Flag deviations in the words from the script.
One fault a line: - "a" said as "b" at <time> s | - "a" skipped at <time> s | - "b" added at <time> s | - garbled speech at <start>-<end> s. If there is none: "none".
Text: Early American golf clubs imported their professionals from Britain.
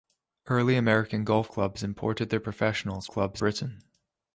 - "from" said as "clubs" at 3.1 s